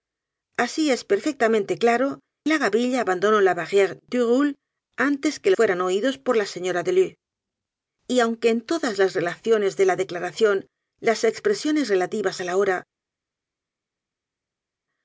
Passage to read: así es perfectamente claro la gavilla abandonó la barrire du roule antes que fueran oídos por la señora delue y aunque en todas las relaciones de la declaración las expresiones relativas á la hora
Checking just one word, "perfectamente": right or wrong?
right